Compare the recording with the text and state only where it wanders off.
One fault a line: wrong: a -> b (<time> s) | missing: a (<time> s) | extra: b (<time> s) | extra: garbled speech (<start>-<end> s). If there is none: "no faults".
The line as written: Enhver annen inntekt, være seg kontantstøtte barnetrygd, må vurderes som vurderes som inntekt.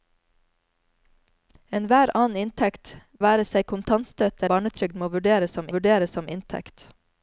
no faults